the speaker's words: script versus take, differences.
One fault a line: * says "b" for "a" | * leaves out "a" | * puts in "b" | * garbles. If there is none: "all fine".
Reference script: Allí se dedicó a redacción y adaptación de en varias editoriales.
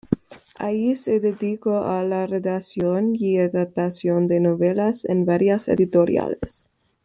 * puts in "la"
* puts in "novelas"